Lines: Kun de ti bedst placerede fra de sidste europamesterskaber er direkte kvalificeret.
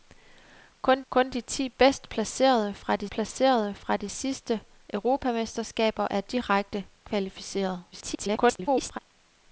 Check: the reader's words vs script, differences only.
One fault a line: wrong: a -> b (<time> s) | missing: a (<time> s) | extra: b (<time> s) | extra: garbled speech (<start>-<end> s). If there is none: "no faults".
extra: kun (1.1 s)
extra: placerede fra de (3.1 s)
extra: garbled speech (7.9-9.0 s)